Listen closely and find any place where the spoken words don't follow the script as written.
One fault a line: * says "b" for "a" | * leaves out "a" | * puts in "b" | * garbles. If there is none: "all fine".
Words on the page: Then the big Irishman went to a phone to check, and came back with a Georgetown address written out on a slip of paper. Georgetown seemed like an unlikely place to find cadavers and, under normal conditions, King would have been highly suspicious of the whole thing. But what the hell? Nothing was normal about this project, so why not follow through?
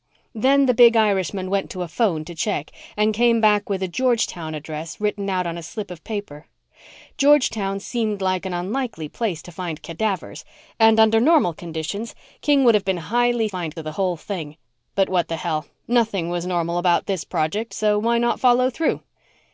* says "find" for "suspicious"